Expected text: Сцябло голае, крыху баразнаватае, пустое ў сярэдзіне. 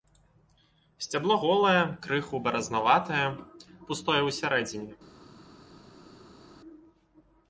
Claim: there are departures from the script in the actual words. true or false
false